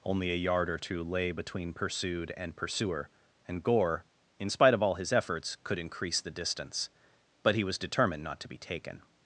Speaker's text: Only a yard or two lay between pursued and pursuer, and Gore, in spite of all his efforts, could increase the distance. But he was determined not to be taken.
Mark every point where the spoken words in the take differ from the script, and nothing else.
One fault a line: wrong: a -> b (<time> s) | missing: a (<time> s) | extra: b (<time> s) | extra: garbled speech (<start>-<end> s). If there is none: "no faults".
no faults